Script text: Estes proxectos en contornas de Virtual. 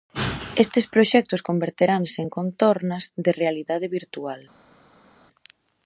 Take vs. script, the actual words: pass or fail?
fail